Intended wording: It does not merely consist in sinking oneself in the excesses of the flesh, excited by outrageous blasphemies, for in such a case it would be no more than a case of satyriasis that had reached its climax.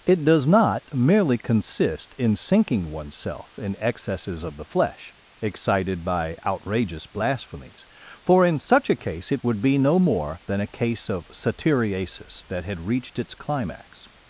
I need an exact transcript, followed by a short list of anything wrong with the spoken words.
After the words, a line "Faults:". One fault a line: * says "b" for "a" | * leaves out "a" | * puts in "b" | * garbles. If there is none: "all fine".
It does not merely consist in sinking oneself in excesses of the flesh, excited by outrageous blasphemies, for in such a case it would be no more than a case of satyriasis that had reached its climax.
Faults:
* leaves out "the"